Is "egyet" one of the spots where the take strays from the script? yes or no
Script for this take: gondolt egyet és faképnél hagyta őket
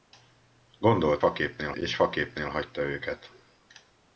yes